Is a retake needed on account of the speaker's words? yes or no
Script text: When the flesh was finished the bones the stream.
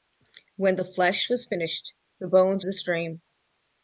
no